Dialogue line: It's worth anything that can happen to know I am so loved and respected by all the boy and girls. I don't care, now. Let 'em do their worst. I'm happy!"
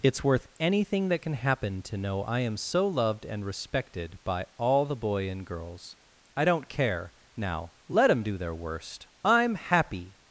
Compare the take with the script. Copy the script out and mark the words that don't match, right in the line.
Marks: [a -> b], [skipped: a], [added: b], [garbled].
It's worth anything that can happen to know I am so loved and respected by all the boy and girls. I don't care, now. Let 'em do their worst. I'm happy!"